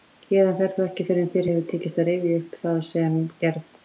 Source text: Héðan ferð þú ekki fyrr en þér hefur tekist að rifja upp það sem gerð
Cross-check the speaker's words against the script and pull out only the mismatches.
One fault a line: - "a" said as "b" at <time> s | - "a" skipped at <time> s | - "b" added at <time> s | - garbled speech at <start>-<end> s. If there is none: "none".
none